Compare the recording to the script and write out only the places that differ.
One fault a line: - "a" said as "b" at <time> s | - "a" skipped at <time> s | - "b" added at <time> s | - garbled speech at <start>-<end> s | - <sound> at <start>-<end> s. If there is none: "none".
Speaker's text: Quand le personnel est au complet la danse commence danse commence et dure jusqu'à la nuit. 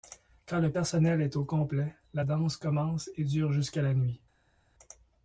- "danse commence" skipped at 3.1 s